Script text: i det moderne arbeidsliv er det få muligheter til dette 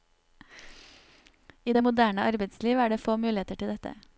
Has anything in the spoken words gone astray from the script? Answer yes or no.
no